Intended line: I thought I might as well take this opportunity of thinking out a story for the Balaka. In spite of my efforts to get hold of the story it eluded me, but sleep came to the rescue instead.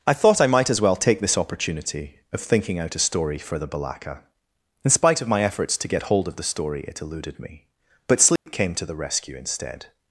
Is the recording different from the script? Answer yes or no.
no